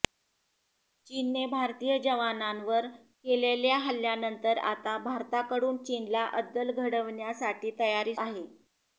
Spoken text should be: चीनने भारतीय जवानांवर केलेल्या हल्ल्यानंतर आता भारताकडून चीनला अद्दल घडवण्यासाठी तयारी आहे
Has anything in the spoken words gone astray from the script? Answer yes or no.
no